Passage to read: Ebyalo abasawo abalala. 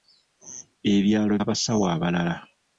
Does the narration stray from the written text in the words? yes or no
no